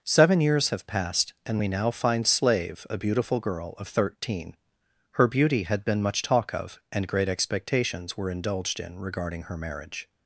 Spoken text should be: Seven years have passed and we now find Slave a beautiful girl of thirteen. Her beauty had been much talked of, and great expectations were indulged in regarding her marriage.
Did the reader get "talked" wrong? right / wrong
wrong